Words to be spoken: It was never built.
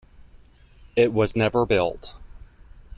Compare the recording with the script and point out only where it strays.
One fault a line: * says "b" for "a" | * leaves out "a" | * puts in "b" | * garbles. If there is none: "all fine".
all fine